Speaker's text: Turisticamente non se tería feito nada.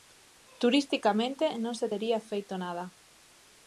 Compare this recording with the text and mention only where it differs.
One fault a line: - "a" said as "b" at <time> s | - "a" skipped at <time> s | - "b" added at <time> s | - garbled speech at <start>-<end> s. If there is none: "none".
none